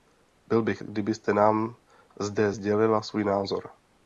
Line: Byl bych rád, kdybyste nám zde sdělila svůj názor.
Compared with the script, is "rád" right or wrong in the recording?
wrong